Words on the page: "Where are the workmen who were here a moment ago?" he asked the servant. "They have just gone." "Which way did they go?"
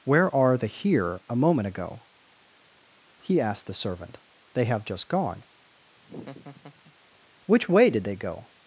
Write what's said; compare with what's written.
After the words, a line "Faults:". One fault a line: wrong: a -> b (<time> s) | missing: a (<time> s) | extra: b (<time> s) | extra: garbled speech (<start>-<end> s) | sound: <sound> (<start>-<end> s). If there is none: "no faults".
"Where are the here a moment ago?" he asked the servant. "They have just gone." "Which way did they go?"
Faults:
missing: workmen who were (0.7 s)
sound: laugh (6.0-6.9 s)